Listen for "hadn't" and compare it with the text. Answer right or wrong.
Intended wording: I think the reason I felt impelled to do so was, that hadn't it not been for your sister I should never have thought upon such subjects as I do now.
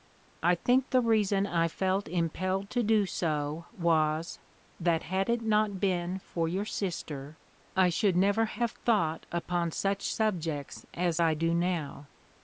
wrong